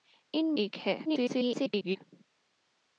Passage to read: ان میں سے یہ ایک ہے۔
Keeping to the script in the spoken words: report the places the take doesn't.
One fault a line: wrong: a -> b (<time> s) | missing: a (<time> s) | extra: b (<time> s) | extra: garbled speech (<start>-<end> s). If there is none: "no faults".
missing: میں سے یہ (0.6 s)
extra: garbled speech (1.0-2.0 s)